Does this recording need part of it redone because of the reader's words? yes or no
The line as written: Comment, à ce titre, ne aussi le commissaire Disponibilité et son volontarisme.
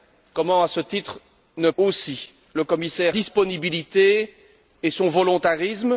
no